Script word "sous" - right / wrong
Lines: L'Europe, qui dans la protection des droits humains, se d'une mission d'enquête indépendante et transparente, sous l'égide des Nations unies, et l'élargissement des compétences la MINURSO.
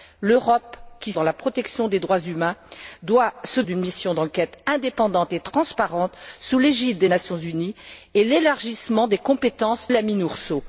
right